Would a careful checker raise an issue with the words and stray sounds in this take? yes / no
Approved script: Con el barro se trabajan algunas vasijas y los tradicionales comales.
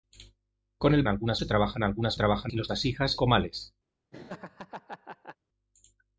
yes